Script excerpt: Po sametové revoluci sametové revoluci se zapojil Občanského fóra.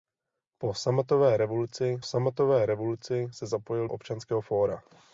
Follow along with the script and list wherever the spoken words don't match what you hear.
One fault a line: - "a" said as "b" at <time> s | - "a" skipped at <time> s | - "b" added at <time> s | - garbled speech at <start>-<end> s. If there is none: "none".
none